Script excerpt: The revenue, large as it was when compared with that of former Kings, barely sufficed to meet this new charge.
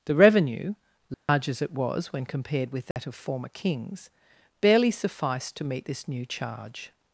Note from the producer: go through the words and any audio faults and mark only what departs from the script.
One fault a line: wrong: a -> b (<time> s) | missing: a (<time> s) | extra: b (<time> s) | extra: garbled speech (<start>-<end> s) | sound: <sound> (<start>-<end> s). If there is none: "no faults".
sound: dropout (1.1-1.3 s)
sound: dropout (2.9-3.0 s)